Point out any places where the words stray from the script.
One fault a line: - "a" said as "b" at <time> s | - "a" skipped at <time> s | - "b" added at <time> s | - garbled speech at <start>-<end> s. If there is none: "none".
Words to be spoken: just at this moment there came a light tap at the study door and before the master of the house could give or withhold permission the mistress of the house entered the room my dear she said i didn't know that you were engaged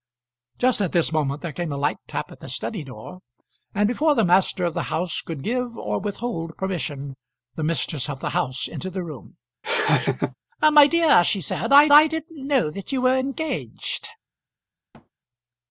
- "i" added at 11.9 s